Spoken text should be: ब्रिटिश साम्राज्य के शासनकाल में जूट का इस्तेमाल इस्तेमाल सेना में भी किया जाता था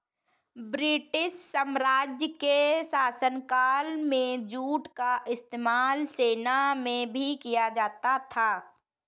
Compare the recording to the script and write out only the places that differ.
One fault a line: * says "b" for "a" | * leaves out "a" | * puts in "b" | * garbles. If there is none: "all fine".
* leaves out "इस्तेमाल"